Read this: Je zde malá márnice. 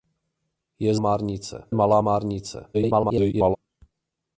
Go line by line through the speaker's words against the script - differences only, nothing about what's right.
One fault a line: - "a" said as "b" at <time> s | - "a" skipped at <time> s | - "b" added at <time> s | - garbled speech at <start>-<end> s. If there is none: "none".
- "zde" said as "márnice" at 1.0 s
- garbled speech at 2.7-3.6 s